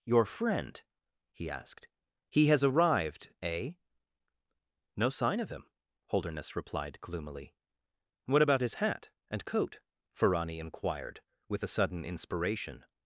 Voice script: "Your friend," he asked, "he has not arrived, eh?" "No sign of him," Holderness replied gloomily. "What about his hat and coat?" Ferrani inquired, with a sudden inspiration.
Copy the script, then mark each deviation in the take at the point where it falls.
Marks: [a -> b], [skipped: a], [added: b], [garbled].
"Your friend," he asked, "he has [skipped: not] arrived, eh?" "No sign of him," Holderness replied gloomily. "What about his hat and coat?" Ferrani inquired, with a sudden inspiration.